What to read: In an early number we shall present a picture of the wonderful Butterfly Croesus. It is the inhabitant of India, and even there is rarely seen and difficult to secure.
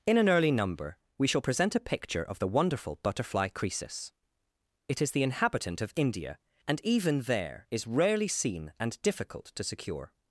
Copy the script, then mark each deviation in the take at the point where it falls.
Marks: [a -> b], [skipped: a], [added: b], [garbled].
In an early number we shall present a picture of the wonderful Butterfly Croesus. It is the inhabitant of India, and even there is rarely seen and difficult to secure.